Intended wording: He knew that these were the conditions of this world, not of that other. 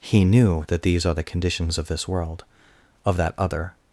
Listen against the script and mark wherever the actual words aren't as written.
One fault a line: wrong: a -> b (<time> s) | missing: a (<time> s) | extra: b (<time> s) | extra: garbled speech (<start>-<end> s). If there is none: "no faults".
wrong: were -> are (1.1 s)
missing: not (2.4 s)